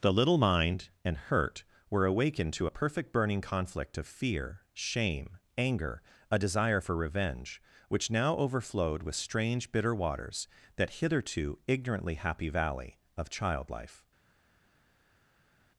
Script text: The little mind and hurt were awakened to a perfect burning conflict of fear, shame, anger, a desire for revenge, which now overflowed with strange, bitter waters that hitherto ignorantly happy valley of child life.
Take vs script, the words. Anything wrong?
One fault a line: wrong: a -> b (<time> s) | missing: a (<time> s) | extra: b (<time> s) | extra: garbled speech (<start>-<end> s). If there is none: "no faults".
no faults